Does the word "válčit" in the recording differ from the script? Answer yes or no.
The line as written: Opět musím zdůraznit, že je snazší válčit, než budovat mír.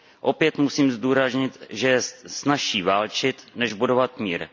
no